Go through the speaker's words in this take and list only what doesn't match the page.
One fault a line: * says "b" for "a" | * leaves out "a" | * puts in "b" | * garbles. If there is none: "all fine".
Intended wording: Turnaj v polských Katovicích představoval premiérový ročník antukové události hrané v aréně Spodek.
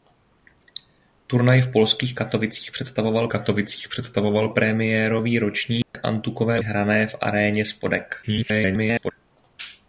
* puts in "Katovicích představoval"
* leaves out "události"
* garbles